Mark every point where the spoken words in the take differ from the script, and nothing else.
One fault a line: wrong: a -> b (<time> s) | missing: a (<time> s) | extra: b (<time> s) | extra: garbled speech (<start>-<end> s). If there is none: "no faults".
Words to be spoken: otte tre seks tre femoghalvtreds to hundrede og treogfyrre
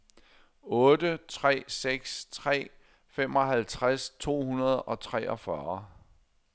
no faults